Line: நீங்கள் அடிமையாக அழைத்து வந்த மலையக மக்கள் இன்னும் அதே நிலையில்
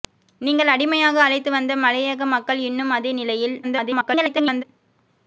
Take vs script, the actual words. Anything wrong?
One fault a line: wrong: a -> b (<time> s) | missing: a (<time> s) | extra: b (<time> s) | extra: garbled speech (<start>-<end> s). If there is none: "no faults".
extra: garbled speech (3.6-4.6 s)